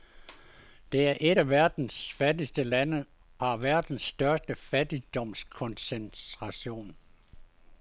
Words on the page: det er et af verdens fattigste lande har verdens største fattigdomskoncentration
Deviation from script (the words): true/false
false